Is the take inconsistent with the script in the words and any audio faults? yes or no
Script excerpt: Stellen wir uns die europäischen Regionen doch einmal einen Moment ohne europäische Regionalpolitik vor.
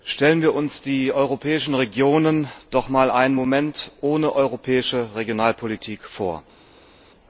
no